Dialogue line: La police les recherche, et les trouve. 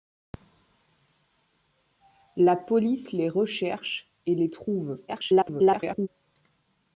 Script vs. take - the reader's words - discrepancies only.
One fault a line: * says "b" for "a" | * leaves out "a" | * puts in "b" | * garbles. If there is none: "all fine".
* garbles